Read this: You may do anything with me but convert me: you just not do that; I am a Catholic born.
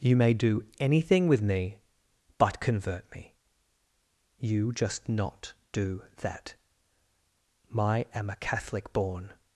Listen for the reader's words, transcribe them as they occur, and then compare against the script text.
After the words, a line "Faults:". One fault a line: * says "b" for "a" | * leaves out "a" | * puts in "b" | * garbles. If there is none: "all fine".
You may do anything with me but convert me: you just not do that; I am a Catholic born.
Faults:
all fine